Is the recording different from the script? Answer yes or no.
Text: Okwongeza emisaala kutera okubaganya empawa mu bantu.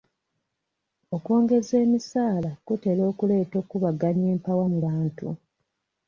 yes